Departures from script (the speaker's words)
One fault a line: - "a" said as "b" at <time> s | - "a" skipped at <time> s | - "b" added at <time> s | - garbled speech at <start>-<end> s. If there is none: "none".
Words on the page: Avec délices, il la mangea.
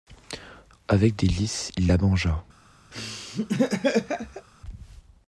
none